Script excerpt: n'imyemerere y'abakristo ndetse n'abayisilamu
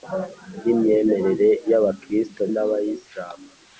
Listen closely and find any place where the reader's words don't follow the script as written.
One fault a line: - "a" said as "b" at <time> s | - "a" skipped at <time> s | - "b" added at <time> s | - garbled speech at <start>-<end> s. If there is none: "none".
- "ndetse" skipped at 2.4 s